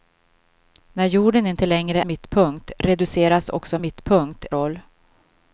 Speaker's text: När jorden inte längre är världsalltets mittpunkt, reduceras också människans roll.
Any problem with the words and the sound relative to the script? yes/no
yes